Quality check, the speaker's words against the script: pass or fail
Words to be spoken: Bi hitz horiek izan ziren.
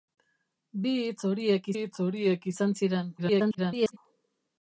fail